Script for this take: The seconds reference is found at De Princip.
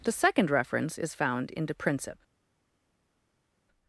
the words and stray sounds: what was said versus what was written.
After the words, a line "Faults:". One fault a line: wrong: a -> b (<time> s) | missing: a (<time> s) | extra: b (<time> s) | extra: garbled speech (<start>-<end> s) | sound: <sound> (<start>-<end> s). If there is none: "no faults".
The second reference is found in De Princip.
Faults:
wrong: seconds -> second (0.1 s)
wrong: at -> in (1.5 s)